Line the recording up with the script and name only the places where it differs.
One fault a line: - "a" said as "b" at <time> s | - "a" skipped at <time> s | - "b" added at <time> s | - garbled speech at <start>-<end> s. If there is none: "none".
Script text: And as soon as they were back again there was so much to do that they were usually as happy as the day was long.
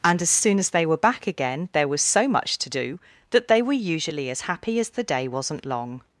- "was" said as "wasn't" at 5.3 s